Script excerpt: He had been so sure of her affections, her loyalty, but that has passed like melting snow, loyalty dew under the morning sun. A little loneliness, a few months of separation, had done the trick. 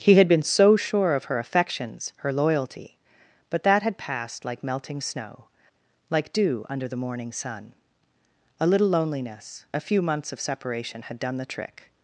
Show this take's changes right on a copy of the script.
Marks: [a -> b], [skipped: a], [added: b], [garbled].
He had been so sure of her affections, her loyalty, but that [has -> had] passed like melting snow, [loyalty -> like] dew under the morning sun. A little loneliness, a few months of separation, had done the trick.